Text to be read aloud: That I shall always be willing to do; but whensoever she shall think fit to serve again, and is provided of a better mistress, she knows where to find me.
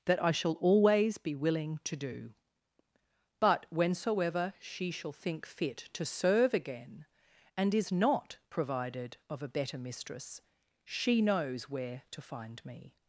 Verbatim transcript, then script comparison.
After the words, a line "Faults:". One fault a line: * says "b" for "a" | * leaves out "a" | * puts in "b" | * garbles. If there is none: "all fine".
That I shall always be willing to do; but whensoever she shall think fit to serve again, and is not provided of a better mistress, she knows where to find me.
Faults:
* puts in "not"